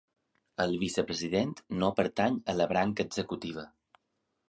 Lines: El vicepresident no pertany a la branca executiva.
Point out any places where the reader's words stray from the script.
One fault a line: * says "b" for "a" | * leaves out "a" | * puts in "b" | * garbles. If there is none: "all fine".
all fine